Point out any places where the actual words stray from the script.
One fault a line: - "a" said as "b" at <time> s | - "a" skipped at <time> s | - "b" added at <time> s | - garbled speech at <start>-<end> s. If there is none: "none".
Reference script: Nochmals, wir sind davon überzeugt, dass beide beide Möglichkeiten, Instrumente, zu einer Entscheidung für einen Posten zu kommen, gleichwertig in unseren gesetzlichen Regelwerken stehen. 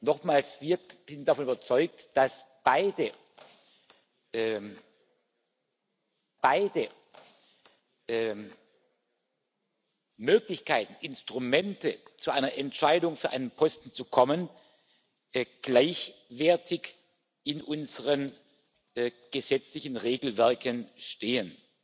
none